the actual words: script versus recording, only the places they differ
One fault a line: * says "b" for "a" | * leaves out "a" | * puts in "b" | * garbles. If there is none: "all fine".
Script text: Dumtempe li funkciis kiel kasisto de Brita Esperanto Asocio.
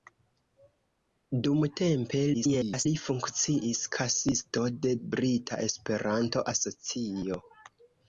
* garbles
* leaves out "kiel"